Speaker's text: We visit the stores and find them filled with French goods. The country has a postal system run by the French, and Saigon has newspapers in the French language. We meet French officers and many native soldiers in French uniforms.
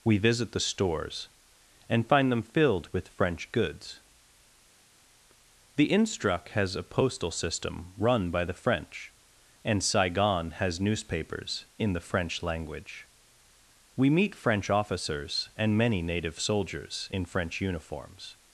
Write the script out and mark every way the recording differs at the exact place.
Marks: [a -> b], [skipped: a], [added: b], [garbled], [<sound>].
We visit the stores and find them filled with French goods. The [country -> instruc] has a postal system run by the French, and Saigon has newspapers in the French language. We meet French officers and many native soldiers in French uniforms.